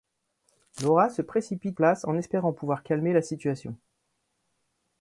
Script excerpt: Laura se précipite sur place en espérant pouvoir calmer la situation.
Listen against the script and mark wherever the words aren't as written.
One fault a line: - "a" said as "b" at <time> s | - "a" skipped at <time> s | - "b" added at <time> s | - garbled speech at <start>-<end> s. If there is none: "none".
- "sur" skipped at 1.8 s